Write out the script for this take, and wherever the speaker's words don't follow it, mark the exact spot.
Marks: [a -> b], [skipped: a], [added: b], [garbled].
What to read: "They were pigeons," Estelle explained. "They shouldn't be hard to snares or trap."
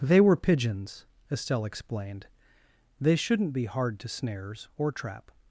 "They were pigeons," Estelle explained. "They shouldn't be hard to snares or trap."